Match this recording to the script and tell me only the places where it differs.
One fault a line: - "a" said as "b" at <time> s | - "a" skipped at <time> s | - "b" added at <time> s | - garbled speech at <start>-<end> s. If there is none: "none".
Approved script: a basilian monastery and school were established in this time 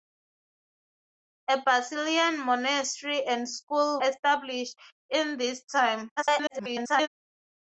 - "were" skipped at 4.0 s
- garbled speech at 6.2-7.1 s